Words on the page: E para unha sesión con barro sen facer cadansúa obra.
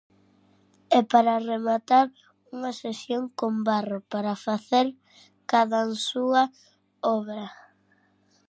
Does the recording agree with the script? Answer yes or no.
no